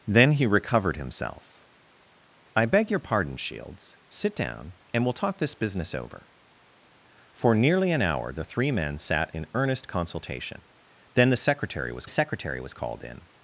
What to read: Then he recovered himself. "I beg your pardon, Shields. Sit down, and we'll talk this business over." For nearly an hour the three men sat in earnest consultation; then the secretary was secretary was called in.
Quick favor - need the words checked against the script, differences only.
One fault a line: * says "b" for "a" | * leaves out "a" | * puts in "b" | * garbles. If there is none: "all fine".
all fine